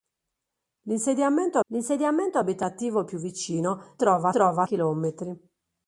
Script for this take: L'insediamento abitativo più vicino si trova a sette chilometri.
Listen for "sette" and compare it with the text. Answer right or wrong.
wrong